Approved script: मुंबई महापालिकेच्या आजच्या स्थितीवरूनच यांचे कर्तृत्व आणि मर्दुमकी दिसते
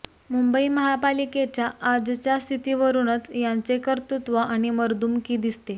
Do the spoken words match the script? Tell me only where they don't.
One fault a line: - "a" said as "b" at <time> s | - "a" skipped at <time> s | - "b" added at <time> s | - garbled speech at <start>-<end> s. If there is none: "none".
none